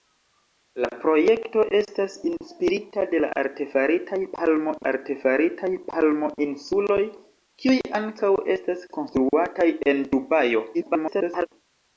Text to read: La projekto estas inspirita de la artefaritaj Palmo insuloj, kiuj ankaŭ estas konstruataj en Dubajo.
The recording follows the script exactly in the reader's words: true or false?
false